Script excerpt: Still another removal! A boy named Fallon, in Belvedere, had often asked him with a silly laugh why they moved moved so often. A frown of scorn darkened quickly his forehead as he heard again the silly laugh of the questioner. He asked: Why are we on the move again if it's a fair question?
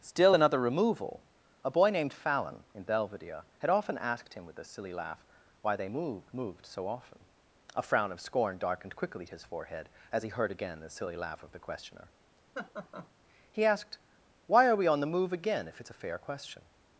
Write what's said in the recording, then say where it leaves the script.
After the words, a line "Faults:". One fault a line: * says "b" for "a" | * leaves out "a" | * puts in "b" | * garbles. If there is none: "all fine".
Still another removal! A boy named Fallon, in Belvedere, had often asked him with a silly laugh why they moved moved so often. A frown of scorn darkened quickly his forehead as he heard again the silly laugh of the questioner. He asked: Why are we on the move again if it's a fair question?
Faults:
all fine